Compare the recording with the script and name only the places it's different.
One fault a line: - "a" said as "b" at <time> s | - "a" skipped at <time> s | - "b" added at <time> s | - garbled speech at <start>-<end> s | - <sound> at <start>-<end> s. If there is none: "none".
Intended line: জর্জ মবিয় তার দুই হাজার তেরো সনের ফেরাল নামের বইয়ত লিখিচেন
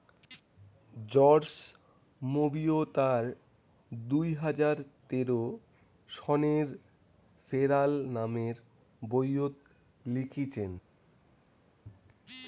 none